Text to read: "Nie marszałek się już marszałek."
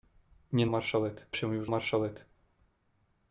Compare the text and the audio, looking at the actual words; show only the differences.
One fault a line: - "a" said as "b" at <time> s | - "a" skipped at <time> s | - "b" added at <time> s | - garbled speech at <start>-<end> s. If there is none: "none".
none